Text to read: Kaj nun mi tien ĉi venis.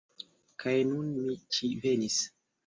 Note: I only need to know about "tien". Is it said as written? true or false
false